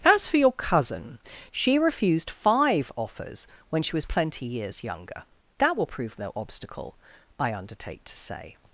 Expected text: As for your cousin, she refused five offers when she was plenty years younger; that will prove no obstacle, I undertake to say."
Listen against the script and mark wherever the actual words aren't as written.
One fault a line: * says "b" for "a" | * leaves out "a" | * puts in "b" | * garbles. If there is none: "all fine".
all fine